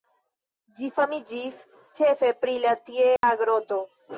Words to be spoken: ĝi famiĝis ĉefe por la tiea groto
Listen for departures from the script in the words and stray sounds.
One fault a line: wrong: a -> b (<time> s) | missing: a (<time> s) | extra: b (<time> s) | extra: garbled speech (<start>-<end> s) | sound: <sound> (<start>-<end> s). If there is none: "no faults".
wrong: por -> pri (2.4 s)
sound: dropout (3.2-3.2 s)